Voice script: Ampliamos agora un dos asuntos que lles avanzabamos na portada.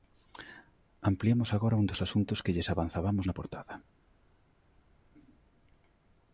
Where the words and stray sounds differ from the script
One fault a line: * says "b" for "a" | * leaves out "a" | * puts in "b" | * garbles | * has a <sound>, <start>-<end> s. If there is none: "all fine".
all fine